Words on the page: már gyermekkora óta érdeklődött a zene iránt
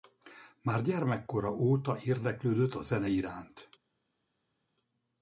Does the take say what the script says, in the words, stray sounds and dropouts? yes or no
yes